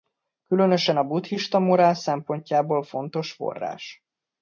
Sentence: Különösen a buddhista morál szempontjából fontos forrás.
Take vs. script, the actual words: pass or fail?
pass